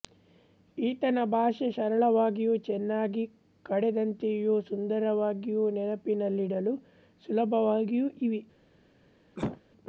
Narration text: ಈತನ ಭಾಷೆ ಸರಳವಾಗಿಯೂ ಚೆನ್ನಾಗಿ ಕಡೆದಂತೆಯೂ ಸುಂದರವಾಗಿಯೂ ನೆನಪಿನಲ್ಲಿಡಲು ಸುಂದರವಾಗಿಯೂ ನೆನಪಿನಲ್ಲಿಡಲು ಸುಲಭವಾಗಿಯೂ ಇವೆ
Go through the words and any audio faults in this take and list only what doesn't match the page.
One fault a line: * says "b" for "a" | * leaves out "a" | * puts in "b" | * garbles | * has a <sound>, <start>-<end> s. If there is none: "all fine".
* leaves out "ಸುಂದರವಾಗಿಯೂ ನೆನಪಿನಲ್ಲಿಡಲು"
* has a cough, 9.4-9.6 s